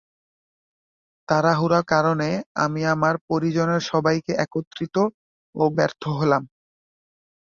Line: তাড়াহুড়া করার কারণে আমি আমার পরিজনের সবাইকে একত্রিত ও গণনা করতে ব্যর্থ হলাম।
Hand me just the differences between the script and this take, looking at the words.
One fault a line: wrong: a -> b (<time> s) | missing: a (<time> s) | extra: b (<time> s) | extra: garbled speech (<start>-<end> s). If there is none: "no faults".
missing: করার (1.8 s)
missing: গণনা করতে (5.6 s)